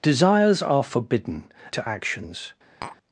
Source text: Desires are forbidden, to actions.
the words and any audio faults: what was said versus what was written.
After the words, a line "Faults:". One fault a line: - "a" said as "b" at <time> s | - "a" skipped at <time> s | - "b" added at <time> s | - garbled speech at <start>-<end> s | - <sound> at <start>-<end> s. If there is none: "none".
Desires are forbidden, to actions.
Faults:
- tap at 2.8-3.0 s